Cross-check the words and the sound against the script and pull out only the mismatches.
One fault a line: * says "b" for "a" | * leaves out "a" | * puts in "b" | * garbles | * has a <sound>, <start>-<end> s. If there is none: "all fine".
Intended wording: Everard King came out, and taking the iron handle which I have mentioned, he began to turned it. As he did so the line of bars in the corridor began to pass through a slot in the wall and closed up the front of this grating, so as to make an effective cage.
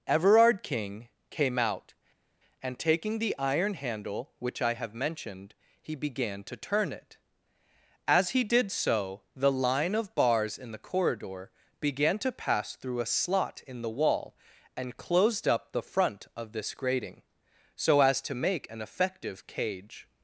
* says "turn" for "turned"